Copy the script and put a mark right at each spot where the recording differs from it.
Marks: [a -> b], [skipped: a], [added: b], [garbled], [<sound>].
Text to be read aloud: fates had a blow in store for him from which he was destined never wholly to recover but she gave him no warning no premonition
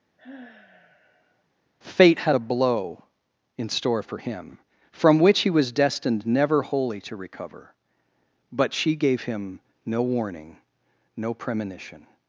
[sigh] [fates -> fate] had a blow in store for him from which he was destined never wholly to recover but she gave him no warning no premonition